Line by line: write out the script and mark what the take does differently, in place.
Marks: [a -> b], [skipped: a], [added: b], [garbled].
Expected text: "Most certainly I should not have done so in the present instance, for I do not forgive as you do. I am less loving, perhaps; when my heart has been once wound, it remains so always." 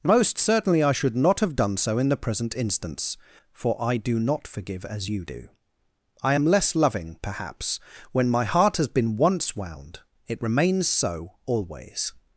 "Most certainly I should not have done so in the present instance, for I do not forgive as you do. I am less loving, perhaps; when my heart has been once wound, it remains so always."